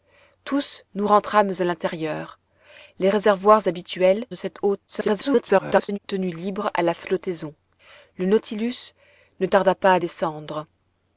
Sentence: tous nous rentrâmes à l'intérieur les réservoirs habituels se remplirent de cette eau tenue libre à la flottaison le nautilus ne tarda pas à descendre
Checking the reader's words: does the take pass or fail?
fail